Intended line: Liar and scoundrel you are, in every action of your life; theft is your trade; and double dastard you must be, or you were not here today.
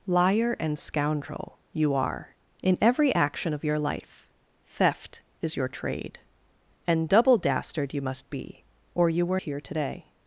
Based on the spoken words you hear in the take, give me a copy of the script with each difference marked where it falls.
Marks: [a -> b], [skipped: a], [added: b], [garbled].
Liar and scoundrel you are, in every action of your life; theft is your trade; and double dastard you must be, or you were [skipped: not] here today.